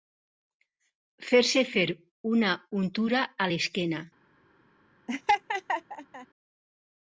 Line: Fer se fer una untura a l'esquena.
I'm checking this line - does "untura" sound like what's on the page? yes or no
yes